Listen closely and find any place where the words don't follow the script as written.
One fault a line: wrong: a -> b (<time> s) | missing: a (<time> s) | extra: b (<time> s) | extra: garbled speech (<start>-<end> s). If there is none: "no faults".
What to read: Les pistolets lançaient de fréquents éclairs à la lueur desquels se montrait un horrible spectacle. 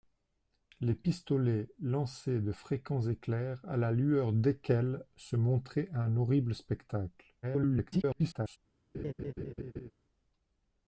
extra: garbled speech (7.4-8.6 s)